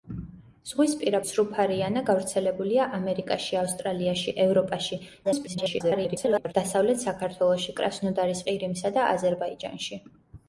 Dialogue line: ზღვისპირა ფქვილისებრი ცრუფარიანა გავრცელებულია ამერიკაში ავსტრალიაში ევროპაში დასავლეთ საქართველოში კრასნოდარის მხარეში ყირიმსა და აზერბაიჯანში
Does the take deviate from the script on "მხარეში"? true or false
true